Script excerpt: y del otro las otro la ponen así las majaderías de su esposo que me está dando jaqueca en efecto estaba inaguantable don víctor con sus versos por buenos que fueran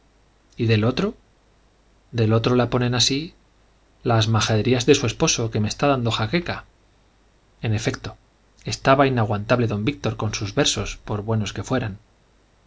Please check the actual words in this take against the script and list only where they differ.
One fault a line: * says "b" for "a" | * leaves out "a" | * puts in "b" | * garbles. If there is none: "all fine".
* says "del" for "las"